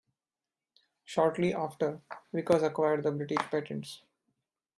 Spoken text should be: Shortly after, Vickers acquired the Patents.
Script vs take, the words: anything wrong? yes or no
yes